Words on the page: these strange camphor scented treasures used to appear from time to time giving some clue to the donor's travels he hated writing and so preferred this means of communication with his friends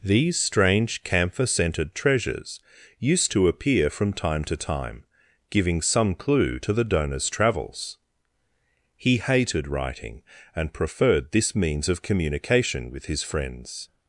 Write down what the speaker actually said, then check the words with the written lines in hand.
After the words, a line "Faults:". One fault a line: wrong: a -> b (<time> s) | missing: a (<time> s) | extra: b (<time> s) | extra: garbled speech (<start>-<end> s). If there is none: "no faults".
these strange camphor scented treasures used to appear from time to time giving some clue to the donor's travels he hated writing and preferred this means of communication with his friends
Faults:
missing: so (10.7 s)